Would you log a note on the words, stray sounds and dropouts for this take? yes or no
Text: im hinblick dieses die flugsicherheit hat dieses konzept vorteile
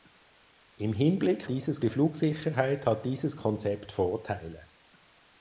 no